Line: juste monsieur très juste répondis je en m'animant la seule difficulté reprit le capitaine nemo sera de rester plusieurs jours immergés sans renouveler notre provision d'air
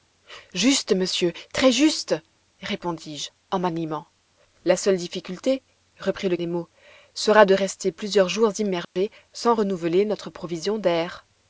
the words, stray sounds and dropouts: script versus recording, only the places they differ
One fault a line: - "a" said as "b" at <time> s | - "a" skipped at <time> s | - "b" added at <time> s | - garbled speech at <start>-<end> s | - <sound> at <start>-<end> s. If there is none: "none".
- "capitaine" skipped at 6.4 s
- dropout at 8.8-9.0 s